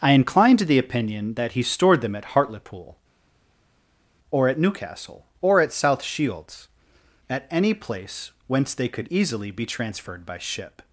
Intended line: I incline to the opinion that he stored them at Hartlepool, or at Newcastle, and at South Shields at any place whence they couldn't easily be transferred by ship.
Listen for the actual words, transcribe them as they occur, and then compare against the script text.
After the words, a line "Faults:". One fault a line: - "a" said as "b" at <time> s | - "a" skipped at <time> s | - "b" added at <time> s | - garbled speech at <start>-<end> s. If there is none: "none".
I incline to the opinion that he stored them at Hartlepool, or at Newcastle, or at South Shields at any place whence they could easily be transferred by ship.
Faults:
- "and" said as "or" at 5.4 s
- "couldn't" said as "could" at 8.9 s